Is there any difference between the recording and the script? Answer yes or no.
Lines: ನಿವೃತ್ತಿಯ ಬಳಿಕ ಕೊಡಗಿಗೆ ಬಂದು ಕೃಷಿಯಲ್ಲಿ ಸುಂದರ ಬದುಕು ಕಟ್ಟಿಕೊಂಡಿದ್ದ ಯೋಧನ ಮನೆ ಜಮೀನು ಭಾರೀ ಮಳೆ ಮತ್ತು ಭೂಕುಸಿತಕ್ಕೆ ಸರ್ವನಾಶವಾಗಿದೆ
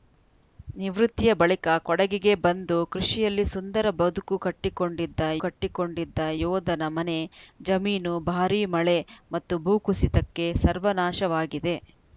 yes